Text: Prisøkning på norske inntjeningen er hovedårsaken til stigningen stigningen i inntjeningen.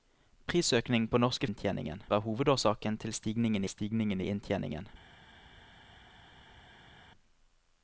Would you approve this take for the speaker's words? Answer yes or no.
yes